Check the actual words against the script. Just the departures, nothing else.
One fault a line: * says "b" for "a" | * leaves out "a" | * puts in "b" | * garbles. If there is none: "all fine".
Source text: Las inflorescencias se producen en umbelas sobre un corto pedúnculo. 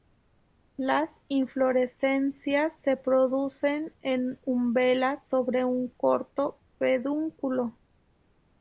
all fine